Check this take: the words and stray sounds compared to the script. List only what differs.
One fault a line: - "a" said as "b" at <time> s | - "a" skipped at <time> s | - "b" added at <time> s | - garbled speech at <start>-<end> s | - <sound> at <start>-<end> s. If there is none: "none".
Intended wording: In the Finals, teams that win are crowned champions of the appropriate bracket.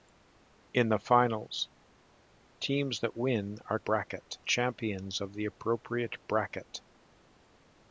- "crowned" said as "bracket" at 3.8 s